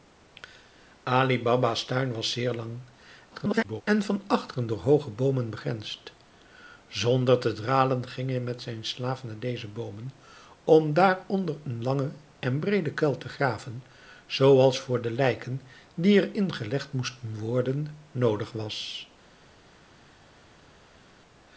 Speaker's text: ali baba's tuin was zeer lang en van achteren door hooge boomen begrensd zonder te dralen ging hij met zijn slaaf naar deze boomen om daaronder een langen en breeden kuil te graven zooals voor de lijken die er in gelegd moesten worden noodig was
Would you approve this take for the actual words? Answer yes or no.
no